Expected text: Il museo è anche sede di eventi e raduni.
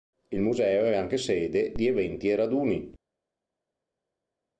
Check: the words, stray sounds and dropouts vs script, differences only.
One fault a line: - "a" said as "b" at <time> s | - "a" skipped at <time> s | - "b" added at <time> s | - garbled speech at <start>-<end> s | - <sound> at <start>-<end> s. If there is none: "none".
none